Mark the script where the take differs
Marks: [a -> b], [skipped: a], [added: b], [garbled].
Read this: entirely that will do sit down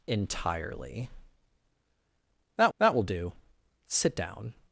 entirely that [added: that] will do sit down